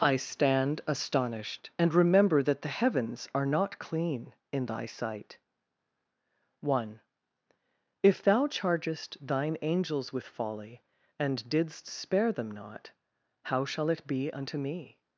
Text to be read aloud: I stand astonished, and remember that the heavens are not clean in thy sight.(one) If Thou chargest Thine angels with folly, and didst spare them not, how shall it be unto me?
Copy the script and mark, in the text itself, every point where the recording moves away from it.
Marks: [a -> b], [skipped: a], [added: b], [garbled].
I stand astonished, and remember that the heavens are not clean in thy sight.(one) If Thou chargest Thine angels with folly, and didst spare them not, how shall it be unto me?